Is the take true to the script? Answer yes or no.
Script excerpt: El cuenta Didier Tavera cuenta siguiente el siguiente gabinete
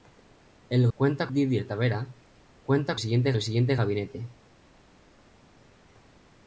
yes